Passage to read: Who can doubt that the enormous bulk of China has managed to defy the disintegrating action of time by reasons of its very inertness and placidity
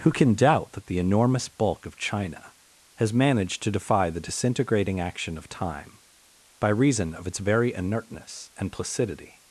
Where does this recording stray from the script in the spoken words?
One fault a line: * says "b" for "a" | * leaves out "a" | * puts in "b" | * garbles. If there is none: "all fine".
* says "reason" for "reasons"